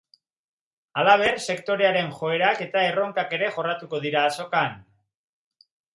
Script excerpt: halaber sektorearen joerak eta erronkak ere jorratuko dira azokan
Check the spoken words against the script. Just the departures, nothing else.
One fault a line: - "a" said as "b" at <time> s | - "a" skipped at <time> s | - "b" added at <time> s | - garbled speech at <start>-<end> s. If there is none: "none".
none